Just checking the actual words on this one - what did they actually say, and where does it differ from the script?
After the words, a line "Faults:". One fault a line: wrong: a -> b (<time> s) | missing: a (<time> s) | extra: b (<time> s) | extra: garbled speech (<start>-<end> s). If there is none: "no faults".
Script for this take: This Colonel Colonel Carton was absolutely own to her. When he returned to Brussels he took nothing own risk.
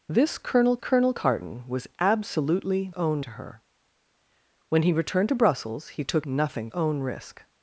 This Colonel Colonel Carton was absolutely own to her. When he returned to Brussels he took nothing own risk.
Faults:
no faults